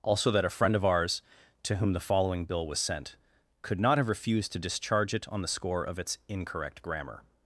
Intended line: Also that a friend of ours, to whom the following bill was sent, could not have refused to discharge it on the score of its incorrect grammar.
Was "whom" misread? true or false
false